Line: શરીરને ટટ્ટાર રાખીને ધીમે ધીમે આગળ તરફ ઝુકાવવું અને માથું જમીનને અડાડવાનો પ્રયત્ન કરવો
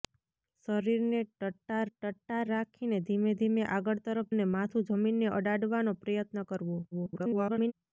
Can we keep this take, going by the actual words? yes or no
no